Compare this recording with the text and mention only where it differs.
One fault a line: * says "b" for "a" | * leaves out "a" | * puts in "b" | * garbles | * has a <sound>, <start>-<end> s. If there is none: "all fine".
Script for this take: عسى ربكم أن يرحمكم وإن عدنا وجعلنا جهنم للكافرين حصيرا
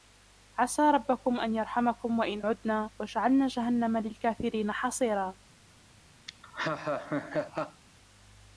* has a laugh, 6.3-7.8 s